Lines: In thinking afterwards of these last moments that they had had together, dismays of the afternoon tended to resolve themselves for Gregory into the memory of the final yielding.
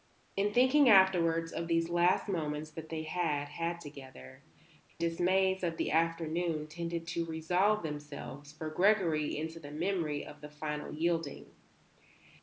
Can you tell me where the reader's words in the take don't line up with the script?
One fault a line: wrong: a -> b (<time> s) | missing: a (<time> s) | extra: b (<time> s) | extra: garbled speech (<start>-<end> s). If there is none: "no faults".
no faults